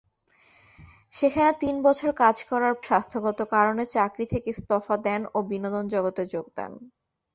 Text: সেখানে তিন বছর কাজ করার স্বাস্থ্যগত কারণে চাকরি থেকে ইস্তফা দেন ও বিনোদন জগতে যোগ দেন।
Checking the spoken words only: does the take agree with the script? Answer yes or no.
yes